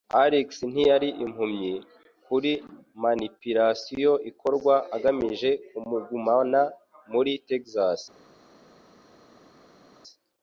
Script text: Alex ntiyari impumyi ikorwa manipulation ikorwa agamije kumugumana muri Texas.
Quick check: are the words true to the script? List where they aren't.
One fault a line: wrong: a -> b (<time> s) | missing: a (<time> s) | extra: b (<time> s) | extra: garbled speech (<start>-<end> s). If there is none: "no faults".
wrong: ikorwa -> kuri (2.2 s)